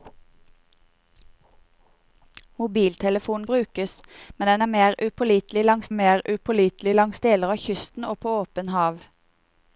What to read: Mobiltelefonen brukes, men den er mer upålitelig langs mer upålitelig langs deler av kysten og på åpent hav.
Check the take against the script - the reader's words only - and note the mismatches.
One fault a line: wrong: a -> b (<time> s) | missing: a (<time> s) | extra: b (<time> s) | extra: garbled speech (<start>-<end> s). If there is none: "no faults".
no faults